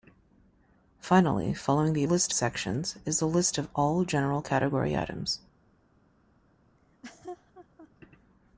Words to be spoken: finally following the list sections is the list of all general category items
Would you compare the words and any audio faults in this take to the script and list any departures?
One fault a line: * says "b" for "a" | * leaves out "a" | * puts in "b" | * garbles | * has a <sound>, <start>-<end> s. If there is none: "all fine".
* has a laugh, 6.8-7.9 s